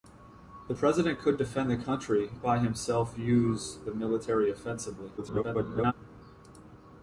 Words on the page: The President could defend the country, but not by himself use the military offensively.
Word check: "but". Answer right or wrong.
wrong